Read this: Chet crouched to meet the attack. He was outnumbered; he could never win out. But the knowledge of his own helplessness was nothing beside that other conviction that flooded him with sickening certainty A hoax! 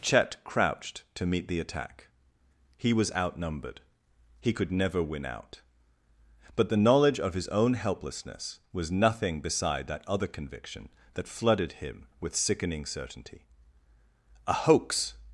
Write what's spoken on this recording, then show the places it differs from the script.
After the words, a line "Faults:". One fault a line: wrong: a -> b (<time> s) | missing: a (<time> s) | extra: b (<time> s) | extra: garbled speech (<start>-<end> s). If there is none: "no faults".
Chet crouched to meet the attack. He was outnumbered; he could never win out. But the knowledge of his own helplessness was nothing beside that other conviction that flooded him with sickening certainty A hoax!
Faults:
no faults